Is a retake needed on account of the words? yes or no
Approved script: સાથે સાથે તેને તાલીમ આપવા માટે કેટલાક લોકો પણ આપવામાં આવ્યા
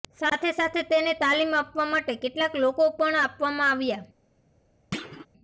no